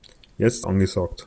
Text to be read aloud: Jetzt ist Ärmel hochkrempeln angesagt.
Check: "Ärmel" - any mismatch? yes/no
yes